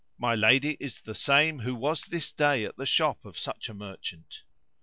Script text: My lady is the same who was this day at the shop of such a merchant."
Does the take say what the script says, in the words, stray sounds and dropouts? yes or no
yes